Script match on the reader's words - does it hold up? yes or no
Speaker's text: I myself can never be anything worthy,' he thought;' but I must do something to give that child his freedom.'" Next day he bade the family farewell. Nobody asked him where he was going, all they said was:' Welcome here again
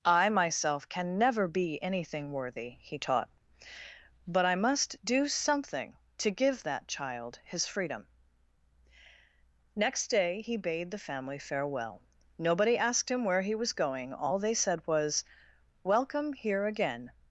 no